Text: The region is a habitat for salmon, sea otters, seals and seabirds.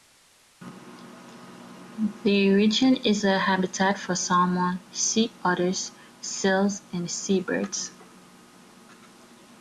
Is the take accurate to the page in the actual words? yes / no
yes